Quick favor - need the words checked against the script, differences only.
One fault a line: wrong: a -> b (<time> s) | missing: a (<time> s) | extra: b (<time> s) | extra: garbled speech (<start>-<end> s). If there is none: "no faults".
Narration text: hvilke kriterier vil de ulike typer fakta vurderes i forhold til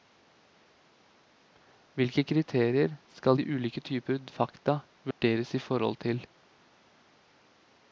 wrong: vil -> skal (3.2 s)